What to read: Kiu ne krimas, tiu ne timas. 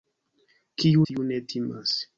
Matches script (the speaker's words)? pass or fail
fail